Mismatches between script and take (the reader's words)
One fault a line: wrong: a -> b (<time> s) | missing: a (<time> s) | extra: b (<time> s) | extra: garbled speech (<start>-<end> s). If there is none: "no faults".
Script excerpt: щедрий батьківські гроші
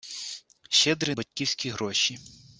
no faults